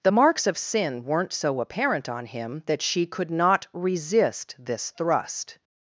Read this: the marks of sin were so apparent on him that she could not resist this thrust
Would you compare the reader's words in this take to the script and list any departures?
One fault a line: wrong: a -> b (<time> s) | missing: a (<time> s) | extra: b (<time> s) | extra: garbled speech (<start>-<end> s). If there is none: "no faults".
wrong: were -> weren't (1.0 s)